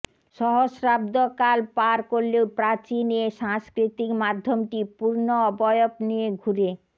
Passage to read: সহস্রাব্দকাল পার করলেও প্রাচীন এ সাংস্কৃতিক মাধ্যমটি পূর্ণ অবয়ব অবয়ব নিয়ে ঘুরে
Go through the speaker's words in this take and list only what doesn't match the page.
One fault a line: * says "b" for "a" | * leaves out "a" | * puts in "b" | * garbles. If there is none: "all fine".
* leaves out "অবয়ব"